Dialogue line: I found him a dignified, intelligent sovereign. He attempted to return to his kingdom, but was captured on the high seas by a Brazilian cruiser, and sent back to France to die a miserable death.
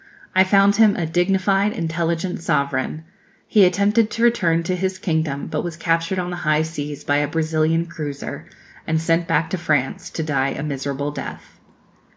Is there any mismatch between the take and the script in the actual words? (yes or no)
no